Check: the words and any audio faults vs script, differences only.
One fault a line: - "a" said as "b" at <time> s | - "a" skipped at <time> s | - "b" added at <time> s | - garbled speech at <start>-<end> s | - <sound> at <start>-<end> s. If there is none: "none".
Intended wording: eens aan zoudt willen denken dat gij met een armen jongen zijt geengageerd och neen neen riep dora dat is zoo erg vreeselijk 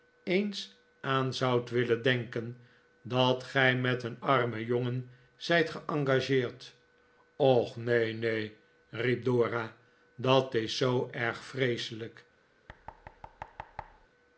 - thud at 12.7-14.1 s